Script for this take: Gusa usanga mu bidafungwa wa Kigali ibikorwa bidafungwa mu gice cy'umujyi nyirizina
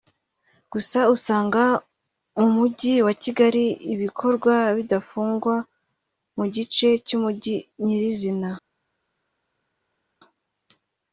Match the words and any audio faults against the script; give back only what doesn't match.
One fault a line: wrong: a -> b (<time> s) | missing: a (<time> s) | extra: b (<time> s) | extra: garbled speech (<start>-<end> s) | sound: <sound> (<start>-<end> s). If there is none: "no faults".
wrong: bidafungwa -> mujyi (2.5 s)